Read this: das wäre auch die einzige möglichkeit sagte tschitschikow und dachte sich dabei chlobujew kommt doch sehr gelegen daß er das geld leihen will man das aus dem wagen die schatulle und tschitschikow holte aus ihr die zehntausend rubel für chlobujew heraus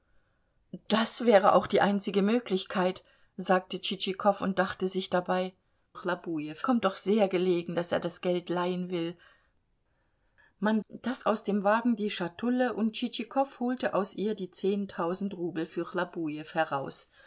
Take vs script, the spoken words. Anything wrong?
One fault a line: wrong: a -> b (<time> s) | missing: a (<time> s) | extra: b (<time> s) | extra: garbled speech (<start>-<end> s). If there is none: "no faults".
no faults